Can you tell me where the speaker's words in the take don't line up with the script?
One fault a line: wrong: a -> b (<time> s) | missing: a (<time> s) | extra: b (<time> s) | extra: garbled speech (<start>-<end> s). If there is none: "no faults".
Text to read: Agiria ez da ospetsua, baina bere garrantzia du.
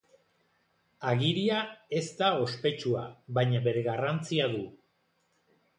no faults